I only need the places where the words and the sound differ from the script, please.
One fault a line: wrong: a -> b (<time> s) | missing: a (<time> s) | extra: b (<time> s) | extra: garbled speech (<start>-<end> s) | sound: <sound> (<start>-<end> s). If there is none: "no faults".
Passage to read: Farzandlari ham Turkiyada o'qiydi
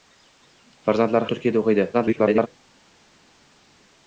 missing: ham (1.3 s)
extra: garbled speech (1.9-2.5 s)